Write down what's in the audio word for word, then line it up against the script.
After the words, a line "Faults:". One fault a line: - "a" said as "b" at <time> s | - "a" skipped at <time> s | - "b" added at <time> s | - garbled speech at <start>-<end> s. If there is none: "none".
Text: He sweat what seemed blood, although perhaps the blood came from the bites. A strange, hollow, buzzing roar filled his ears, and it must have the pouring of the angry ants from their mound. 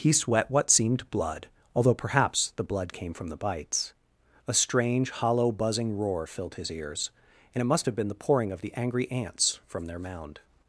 He sweat what seemed blood, although perhaps the blood came from the bites. A strange, hollow, buzzing roar filled his ears, and it must have been the pouring of the angry ants from their mound.
Faults:
- "been" added at 8.0 s